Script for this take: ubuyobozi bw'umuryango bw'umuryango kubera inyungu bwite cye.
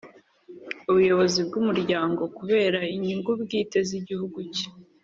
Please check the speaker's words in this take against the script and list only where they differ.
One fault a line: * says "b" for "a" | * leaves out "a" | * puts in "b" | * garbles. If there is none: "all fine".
* leaves out "bw'umuryango"
* puts in "z'igihugu"